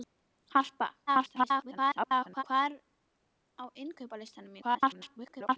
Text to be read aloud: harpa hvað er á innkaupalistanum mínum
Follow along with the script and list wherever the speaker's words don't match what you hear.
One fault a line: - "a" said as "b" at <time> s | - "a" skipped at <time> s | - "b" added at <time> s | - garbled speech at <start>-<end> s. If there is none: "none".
- garbled speech at 1.1-2.4 s
- garbled speech at 4.6-5.6 s